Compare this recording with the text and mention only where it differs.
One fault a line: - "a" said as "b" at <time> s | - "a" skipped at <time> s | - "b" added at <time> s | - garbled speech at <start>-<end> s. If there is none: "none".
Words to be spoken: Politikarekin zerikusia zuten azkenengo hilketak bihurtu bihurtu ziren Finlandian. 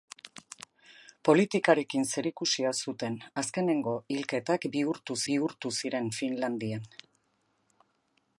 none